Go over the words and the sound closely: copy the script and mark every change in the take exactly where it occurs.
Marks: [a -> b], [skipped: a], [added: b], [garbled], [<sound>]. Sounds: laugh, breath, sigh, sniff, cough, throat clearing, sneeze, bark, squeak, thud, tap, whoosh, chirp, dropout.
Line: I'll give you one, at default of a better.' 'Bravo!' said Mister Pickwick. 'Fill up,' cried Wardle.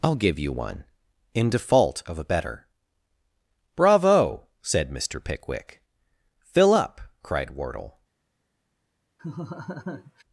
I'll give you one, [at -> in] default of a better.' 'Bravo!' said Mister Pickwick. 'Fill up,' cried Wardle. [laugh]